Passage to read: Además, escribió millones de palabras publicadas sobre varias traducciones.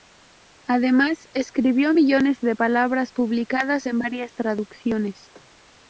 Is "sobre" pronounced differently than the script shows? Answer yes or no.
yes